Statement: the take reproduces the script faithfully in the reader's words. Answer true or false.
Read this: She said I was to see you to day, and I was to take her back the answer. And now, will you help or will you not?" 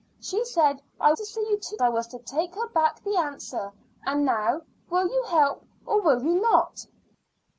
false